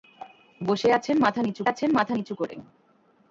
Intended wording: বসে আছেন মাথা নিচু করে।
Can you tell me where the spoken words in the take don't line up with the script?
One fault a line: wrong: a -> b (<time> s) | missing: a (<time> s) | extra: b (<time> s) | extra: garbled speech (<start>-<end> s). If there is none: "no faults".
extra: আছেন মাথা নিচু (1.7 s)